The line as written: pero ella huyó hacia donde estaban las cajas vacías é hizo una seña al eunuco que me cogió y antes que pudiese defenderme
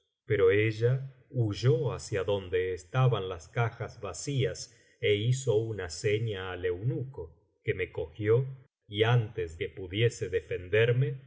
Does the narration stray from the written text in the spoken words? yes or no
no